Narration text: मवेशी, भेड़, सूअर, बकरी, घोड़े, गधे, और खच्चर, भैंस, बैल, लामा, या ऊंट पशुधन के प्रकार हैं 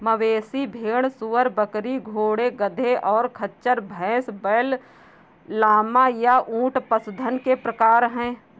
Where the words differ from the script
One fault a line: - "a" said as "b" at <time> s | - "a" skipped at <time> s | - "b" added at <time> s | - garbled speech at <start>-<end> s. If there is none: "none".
none